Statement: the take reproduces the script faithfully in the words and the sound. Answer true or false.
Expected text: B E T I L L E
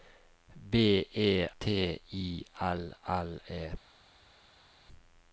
true